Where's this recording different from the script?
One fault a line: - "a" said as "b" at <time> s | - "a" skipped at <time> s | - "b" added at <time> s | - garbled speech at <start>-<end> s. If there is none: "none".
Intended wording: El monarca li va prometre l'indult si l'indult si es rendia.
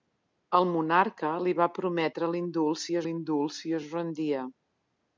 none